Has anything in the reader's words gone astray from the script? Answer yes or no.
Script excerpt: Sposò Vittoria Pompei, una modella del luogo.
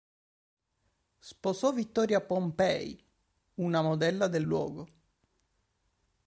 no